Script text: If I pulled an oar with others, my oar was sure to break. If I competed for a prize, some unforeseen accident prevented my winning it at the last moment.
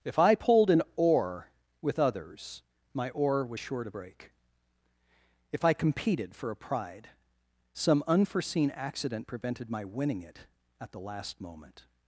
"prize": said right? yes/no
no